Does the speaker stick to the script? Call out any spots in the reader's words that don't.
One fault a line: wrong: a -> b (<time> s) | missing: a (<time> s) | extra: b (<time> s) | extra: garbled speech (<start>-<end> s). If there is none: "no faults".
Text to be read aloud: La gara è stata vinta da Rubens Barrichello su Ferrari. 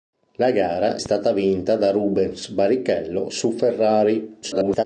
missing: è (1.0 s)
extra: garbled speech (4.4-4.8 s)